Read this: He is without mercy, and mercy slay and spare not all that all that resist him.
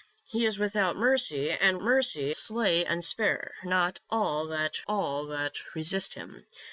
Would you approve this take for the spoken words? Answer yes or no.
yes